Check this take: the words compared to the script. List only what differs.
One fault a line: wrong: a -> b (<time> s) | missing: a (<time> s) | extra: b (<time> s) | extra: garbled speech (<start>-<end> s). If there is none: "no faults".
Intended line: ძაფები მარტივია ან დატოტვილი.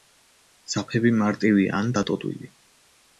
no faults